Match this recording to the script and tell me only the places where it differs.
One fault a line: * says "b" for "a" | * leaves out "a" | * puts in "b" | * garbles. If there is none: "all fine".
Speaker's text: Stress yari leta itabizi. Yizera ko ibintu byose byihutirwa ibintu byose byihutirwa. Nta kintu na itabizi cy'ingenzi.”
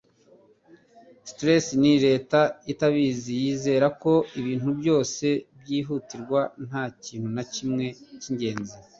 * says "ni" for "yari"
* leaves out "ibintu byose byihutirwa"
* says "kimwe" for "itabizi"